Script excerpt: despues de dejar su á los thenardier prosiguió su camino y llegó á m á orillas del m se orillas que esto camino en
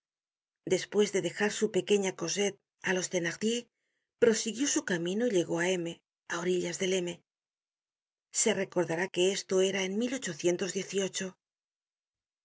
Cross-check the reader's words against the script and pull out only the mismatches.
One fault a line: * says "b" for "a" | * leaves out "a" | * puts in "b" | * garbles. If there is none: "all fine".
* puts in "pequeña cosette"
* says "recordará" for "orillas"
* says "era" for "camino"